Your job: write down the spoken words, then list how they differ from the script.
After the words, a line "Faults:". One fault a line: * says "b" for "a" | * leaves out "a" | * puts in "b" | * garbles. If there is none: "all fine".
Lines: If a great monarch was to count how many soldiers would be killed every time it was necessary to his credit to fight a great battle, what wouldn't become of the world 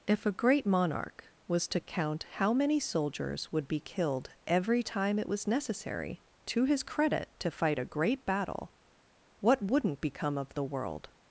If a great monarch was to count how many soldiers would be killed every time it was necessary to his credit to fight a great battle, what wouldn't become of the world
Faults:
all fine